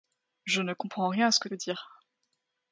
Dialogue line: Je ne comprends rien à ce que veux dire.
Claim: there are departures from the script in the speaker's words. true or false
false